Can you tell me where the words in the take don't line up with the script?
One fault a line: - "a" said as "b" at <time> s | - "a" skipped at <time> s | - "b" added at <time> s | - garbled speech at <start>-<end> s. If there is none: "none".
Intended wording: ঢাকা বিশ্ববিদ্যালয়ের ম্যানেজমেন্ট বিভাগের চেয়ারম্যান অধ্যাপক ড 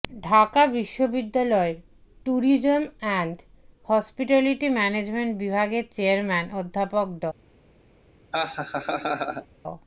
- "ট্যুরিজম অ্যান্ড হসপিটালিটি" added at 2.3 s